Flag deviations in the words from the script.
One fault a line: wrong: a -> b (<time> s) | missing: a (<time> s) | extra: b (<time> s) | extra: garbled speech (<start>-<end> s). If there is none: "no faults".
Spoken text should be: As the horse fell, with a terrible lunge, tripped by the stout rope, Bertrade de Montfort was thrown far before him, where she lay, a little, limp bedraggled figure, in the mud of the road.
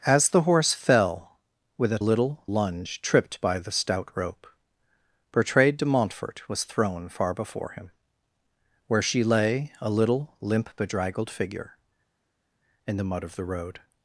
wrong: terrible -> little (2.0 s)